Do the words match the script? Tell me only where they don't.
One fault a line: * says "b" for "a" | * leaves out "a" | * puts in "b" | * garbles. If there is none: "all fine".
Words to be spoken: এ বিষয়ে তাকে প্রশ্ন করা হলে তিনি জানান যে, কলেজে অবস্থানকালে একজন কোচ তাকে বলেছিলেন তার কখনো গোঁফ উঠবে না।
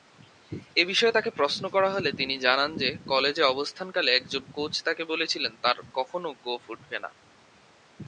all fine